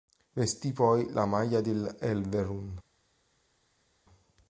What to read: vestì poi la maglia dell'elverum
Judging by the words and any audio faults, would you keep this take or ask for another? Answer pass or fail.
pass